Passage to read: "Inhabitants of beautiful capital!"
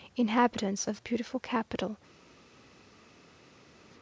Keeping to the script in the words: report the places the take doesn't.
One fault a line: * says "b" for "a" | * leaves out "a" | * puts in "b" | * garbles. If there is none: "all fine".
all fine